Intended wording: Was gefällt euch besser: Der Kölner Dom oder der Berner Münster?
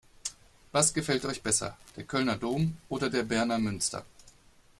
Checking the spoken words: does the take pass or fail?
pass